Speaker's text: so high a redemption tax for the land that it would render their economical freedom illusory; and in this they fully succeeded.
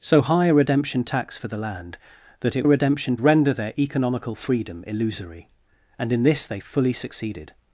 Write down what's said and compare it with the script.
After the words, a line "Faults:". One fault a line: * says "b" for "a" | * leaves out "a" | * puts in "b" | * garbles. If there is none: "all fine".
so high a redemption tax for the land that it redemption render their economical freedom illusory; and in this they fully succeeded.
Faults:
* says "redemption" for "would"